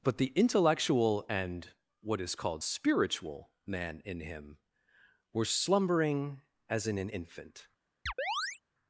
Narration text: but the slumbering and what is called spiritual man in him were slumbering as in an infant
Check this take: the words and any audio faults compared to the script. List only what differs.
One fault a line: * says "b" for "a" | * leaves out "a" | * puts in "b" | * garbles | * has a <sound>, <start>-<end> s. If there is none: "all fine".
* says "intellectual" for "slumbering"
* has a chirp, 8.1-8.6 s